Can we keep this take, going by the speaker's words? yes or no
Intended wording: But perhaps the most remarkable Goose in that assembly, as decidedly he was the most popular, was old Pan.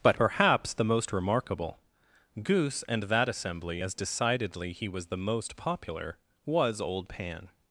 no